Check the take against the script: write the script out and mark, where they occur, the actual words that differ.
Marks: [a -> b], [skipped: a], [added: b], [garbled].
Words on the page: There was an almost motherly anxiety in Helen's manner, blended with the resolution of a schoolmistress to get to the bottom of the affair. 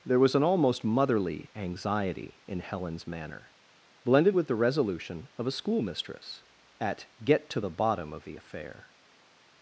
There was an almost motherly anxiety in Helen's manner, blended with the resolution of a schoolmistress [to -> at] get to the bottom of the affair.